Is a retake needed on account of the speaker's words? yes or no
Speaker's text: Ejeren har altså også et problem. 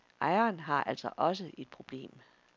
no